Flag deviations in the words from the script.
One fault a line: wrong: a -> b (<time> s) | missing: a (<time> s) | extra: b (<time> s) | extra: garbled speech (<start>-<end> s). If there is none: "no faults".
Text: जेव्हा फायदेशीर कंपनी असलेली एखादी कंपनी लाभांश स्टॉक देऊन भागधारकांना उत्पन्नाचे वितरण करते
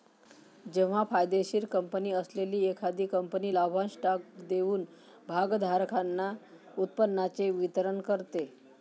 no faults